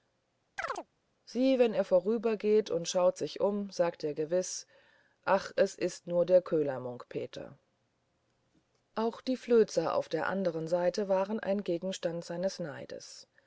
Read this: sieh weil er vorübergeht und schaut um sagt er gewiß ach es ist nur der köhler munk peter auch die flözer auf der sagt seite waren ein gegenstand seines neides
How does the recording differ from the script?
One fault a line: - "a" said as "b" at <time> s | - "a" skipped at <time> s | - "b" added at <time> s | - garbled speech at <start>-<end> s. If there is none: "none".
- "weil" said as "wenn" at 1.6 s
- "sich" added at 3.2 s
- "sagt" said as "andern" at 10.3 s